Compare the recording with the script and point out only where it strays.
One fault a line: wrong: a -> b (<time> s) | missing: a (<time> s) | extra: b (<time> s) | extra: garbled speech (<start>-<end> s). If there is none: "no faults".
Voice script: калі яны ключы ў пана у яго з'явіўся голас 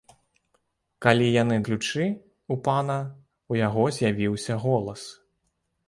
no faults